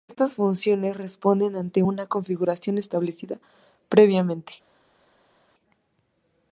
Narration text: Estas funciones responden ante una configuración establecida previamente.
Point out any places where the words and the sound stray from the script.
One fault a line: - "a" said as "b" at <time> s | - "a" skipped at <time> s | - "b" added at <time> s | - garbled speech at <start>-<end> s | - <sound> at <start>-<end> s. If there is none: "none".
none